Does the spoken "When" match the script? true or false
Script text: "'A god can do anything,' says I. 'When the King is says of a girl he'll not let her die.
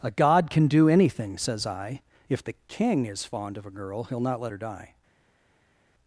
false